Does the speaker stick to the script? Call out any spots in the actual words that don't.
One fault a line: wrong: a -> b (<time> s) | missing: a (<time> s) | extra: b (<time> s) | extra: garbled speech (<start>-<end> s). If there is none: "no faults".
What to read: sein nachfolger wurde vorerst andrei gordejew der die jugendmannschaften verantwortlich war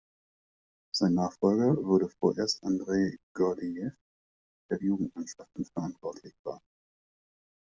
no faults